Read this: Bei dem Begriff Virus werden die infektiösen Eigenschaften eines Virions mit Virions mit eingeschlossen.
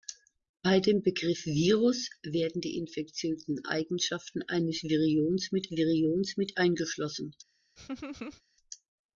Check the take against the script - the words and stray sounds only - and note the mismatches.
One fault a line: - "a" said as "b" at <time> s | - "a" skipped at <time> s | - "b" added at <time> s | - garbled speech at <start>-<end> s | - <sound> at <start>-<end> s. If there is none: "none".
- laugh at 7.8-8.4 s